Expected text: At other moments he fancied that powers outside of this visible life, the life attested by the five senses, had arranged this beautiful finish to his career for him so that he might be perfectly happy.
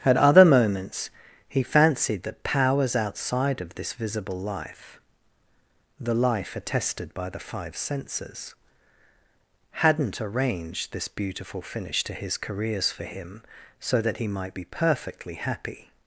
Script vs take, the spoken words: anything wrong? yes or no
yes